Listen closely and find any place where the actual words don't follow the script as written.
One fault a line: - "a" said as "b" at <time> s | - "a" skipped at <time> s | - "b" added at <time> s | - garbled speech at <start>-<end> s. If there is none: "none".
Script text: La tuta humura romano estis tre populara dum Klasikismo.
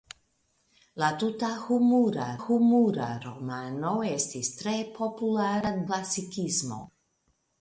- "humura" added at 2.4 s
- "dum" skipped at 5.7 s